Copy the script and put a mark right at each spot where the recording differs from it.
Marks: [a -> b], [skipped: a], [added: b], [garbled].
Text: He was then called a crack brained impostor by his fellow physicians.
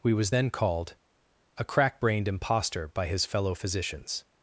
[He -> We] was then called a crack brained impostor by his fellow physicians.